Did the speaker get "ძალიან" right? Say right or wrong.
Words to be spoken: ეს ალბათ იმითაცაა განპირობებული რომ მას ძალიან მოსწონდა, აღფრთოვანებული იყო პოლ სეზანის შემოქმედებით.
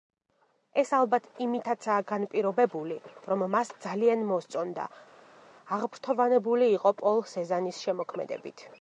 right